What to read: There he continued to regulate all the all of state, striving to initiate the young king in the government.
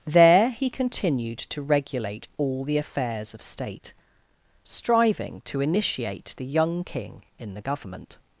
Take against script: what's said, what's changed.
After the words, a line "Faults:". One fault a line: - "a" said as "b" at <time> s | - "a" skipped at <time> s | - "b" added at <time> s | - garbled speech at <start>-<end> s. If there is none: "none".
There he continued to regulate all the affairs of state, striving to initiate the young king in the government.
Faults:
- "all" said as "affairs" at 2.8 s